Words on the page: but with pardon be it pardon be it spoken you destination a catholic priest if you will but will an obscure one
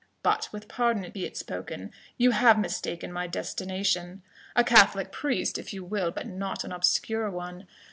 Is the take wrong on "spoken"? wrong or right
wrong